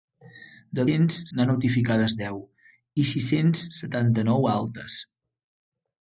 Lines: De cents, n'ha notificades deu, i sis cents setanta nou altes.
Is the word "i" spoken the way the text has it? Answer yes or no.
yes